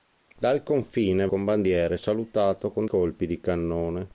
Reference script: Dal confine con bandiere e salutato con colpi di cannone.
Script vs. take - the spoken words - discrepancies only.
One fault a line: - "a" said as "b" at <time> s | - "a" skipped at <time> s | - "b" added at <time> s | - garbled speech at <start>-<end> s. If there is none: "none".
none